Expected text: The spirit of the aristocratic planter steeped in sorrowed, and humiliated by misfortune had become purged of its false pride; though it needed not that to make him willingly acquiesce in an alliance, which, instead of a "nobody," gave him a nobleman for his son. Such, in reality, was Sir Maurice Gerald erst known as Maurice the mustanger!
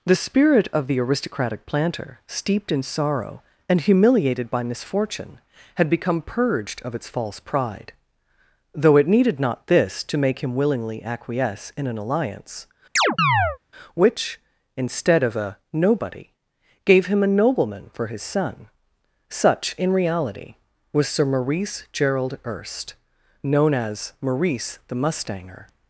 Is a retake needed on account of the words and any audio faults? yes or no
yes